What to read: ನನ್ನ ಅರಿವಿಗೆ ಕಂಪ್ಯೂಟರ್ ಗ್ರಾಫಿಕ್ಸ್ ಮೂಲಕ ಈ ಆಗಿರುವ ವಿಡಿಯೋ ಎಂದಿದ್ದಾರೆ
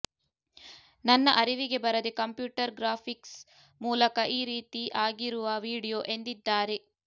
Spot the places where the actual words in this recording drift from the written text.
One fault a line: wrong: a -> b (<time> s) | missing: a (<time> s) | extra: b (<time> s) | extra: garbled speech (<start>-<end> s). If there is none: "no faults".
extra: ಬರದೆ (1.8 s)
extra: ರೀತಿ (4.5 s)